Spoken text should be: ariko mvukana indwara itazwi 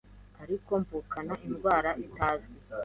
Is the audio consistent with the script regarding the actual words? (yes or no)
yes